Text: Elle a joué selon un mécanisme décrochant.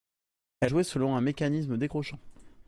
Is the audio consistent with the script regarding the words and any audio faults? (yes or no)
no